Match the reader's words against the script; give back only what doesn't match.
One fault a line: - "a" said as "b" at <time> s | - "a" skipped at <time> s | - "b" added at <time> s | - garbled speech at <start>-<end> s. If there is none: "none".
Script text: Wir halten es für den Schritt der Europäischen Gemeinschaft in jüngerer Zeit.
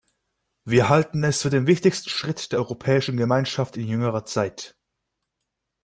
- "wichtigsten" added at 1.7 s